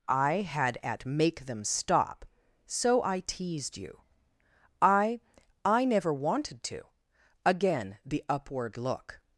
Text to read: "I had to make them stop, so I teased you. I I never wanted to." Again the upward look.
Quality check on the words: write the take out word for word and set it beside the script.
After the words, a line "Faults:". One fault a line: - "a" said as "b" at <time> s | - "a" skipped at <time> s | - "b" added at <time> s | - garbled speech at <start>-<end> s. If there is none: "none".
"I had at make them stop, so I teased you. I I never wanted to." Again the upward look.
Faults:
- "to" said as "at" at 0.8 s